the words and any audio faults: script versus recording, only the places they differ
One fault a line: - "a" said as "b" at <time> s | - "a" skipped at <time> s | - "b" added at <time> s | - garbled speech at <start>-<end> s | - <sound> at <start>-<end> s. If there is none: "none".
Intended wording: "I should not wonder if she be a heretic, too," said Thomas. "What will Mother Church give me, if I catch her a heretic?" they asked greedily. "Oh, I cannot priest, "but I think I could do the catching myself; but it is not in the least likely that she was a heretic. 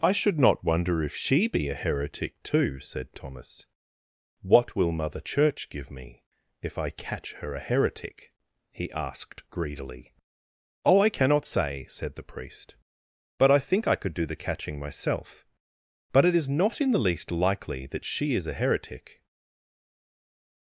- "they" said as "he" at 8.7 s
- "say said the" added at 11.4 s
- "was" said as "is" at 18.3 s